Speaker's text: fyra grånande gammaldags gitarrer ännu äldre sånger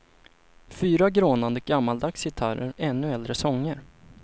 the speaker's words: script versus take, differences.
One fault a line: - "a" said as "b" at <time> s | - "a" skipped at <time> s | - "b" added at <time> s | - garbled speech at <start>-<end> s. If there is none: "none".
none